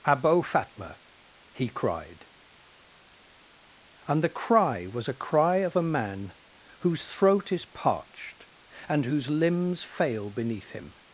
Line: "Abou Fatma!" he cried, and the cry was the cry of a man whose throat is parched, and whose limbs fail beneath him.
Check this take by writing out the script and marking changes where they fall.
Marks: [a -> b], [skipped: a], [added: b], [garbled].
"Abou Fatma!" he cried, and the cry was [the -> a] cry of a man whose throat is parched, and whose limbs fail beneath him.